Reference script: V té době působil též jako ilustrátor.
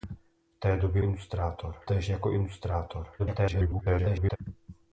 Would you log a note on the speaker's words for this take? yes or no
yes